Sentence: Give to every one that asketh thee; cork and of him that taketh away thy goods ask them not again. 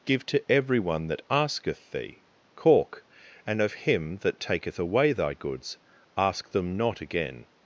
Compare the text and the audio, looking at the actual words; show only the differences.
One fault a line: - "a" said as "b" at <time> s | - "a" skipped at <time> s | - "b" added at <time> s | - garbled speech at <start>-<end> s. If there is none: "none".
none